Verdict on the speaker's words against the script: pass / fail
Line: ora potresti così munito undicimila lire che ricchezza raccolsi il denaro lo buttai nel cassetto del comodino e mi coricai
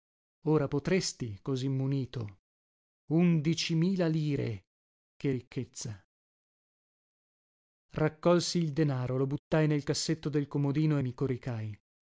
pass